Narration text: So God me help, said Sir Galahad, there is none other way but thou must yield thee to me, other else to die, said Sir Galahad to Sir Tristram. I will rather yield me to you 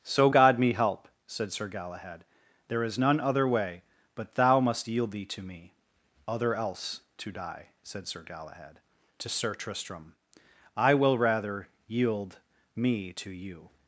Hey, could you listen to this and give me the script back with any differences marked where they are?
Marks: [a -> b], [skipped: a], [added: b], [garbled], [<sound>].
So God me help, said Sir Galahad, there is none other way but thou must yield thee to me, other else to die, said Sir Galahad to Sir Tristram. I will rather yield me to you